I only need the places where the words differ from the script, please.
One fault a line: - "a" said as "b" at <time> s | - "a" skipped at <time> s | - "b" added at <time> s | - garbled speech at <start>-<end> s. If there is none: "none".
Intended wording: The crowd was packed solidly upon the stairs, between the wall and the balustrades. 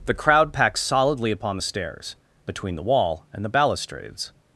- "was" skipped at 0.5 s